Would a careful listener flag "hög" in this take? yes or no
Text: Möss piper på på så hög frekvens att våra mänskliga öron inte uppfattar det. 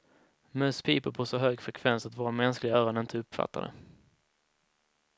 no